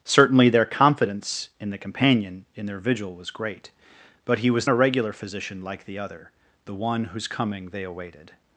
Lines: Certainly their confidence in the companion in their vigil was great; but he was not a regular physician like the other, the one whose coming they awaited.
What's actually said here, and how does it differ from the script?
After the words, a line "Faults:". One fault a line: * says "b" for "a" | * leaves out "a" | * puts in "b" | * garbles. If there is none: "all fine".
Certainly their confidence in the companion in their vigil was great; but he was a regular physician like the other, the one whose coming they awaited.
Faults:
* leaves out "not"